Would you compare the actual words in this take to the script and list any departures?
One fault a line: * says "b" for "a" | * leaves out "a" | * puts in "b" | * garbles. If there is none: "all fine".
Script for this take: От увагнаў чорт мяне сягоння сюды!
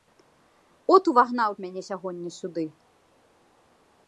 * leaves out "чорт"